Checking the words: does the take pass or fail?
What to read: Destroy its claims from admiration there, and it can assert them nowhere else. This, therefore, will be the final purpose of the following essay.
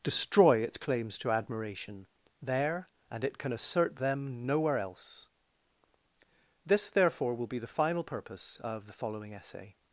fail